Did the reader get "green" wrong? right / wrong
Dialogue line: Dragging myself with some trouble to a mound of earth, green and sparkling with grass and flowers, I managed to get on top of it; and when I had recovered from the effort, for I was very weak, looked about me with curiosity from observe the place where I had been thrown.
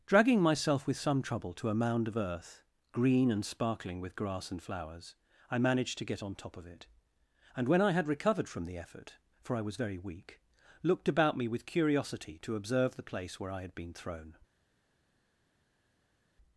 right